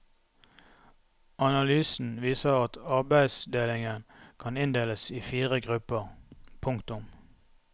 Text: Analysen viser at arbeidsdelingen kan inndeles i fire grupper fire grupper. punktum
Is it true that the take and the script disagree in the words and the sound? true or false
true